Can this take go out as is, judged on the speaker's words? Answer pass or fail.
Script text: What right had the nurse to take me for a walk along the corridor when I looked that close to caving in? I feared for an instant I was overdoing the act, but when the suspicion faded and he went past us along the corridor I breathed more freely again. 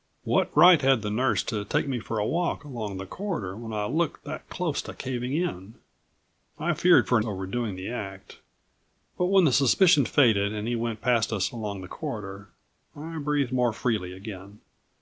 fail